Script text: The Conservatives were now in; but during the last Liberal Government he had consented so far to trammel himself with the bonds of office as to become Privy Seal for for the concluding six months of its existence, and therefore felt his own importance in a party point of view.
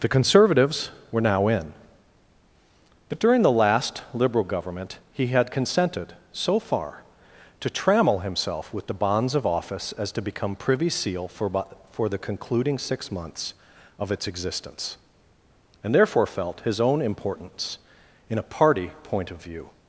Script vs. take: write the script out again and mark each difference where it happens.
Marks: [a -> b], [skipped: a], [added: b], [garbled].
The Conservatives were now in; but during the last Liberal Government he had consented so far to trammel himself with the bonds of office as to become Privy Seal for for the concluding six months of its existence, and therefore felt his own importance in a party point of view.